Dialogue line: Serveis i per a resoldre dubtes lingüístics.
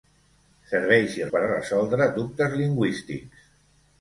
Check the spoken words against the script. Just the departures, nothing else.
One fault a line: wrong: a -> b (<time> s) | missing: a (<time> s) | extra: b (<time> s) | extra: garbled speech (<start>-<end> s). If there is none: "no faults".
no faults